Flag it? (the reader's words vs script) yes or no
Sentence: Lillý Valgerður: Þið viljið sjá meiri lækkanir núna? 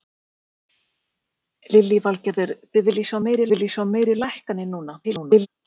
yes